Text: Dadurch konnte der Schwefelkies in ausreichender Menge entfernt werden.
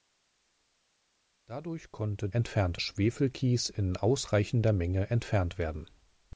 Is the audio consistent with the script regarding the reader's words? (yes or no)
no